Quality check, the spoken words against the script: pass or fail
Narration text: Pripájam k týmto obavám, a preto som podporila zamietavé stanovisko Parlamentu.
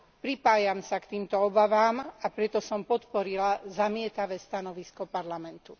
fail